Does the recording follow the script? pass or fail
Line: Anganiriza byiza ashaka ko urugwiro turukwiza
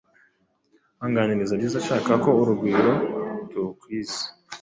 pass